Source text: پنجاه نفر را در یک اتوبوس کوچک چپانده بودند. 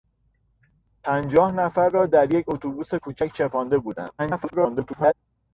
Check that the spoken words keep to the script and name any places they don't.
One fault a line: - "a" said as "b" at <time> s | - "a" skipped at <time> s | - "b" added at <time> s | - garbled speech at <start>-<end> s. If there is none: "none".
- garbled speech at 4.2-5.1 s